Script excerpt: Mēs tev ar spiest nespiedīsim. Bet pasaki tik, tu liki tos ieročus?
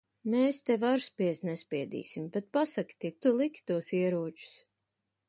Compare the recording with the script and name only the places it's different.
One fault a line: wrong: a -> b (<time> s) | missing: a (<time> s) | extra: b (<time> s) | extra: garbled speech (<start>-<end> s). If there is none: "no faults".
no faults